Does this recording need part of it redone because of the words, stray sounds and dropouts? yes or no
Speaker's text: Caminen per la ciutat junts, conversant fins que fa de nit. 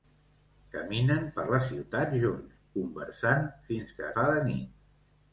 no